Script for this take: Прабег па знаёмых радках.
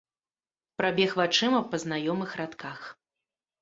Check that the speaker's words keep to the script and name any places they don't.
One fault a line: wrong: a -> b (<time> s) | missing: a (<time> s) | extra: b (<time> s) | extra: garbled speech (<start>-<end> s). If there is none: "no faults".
extra: вачыма (1.2 s)